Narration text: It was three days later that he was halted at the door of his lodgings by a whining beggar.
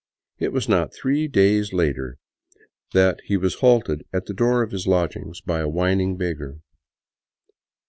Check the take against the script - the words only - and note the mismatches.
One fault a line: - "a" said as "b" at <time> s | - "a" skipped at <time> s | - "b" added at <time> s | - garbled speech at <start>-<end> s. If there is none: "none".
- "not" added at 0.7 s